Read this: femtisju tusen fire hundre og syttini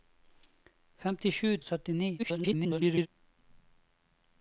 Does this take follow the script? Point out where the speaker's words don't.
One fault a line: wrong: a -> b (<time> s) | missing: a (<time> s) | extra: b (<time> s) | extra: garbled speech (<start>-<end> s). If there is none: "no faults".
missing: tusen fire hundre (1.5 s)
extra: garbled speech (2.2-3.1 s)